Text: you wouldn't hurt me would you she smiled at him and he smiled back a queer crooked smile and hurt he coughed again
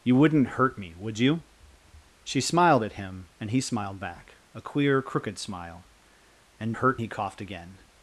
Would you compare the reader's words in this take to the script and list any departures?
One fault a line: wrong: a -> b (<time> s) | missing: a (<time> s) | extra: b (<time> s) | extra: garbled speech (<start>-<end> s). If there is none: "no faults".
no faults